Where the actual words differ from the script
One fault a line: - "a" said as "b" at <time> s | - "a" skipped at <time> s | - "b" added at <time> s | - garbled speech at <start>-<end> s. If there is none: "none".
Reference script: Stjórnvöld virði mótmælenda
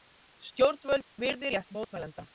- "rétt" added at 1.6 s